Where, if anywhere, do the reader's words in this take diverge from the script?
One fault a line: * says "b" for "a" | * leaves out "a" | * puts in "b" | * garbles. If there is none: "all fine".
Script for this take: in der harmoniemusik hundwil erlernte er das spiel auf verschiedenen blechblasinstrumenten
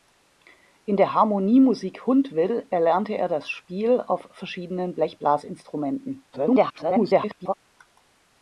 * garbles